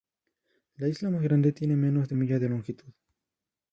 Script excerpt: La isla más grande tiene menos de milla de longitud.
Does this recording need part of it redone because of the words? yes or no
no